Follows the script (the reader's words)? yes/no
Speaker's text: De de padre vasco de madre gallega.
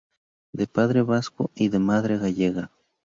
no